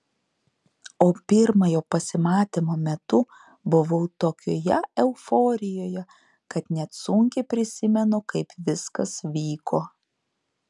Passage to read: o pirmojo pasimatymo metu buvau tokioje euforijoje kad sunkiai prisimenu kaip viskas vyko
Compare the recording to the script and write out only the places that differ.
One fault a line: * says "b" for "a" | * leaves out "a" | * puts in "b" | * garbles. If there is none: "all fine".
* puts in "net"